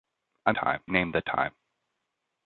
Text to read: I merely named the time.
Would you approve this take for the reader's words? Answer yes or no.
no